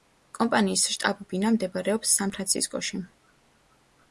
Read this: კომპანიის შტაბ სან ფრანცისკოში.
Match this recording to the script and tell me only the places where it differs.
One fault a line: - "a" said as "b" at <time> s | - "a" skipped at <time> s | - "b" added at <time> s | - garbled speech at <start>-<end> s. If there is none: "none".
- "ბინა მდებარეობს" added at 1.3 s